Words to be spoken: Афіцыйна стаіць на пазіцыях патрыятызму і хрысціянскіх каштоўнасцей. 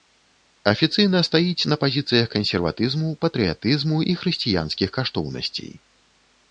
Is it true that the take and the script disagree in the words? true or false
true